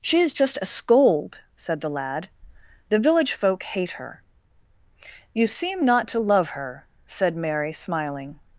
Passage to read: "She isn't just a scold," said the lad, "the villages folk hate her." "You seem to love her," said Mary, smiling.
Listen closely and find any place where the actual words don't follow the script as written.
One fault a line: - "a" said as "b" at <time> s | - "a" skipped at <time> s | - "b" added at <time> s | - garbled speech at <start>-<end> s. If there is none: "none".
- "isn't" said as "is" at 0.2 s
- "villages" said as "village" at 3.0 s
- "not" added at 5.8 s